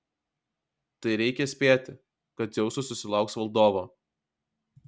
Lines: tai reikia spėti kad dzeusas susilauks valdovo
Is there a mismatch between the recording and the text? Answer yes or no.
no